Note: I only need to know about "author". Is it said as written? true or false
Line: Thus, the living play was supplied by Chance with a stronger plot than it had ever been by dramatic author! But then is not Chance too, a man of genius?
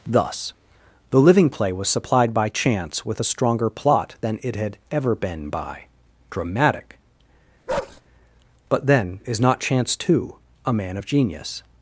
false